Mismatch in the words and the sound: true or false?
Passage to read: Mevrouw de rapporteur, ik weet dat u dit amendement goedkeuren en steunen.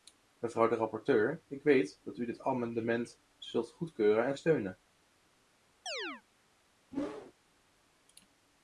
true